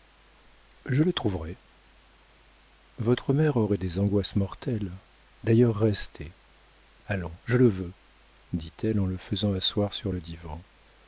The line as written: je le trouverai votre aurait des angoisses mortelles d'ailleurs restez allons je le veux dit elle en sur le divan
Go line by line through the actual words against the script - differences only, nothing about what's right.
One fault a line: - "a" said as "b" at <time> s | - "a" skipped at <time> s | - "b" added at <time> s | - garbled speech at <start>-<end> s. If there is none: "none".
- "mère" added at 3.4 s
- "le faisant asseoir" added at 9.1 s